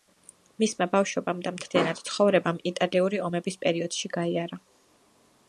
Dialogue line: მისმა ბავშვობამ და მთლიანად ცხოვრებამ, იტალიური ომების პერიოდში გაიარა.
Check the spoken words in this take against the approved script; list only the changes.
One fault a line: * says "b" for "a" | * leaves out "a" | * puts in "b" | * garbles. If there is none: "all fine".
all fine